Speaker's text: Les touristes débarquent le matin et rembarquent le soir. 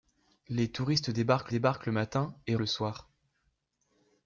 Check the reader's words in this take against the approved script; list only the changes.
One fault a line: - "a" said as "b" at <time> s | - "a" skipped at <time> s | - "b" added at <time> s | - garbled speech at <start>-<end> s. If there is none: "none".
- "débarquent" added at 1.5 s
- "rembarquent" skipped at 2.6 s